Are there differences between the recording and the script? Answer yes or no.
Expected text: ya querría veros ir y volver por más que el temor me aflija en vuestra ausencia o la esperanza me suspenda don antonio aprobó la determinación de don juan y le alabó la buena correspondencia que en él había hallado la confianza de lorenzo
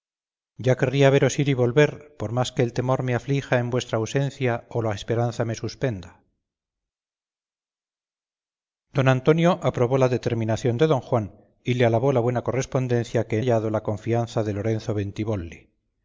yes